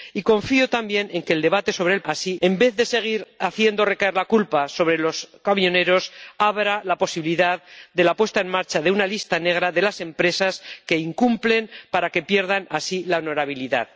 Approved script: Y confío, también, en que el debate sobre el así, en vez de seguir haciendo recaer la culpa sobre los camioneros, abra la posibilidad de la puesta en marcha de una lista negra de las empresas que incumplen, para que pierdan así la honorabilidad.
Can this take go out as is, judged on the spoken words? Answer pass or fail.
pass